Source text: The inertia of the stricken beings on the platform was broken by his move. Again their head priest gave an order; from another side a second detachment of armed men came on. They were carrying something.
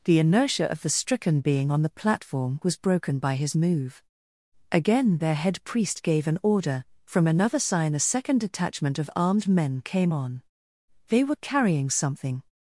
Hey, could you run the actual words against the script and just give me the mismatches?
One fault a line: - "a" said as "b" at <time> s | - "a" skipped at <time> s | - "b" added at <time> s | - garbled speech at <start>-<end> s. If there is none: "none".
- "beings" said as "being" at 1.4 s
- "side" said as "sign" at 7.6 s